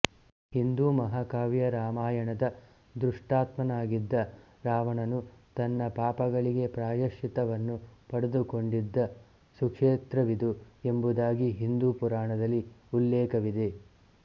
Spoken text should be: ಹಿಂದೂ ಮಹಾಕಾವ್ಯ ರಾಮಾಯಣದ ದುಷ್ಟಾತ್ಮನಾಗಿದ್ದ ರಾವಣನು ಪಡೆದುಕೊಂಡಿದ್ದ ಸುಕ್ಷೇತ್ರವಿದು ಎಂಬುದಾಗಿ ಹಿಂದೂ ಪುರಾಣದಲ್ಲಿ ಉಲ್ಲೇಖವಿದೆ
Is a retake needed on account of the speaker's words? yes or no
yes